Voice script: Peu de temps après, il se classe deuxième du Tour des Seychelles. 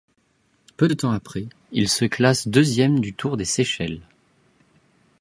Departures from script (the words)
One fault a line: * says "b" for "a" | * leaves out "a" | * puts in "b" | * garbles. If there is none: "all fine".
all fine